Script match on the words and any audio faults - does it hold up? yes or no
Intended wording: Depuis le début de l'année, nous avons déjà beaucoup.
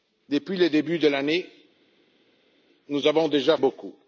yes